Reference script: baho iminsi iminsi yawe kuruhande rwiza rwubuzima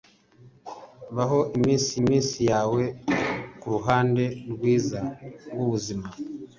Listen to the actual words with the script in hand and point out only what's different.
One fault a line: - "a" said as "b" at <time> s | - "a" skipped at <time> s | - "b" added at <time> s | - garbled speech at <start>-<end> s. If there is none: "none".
none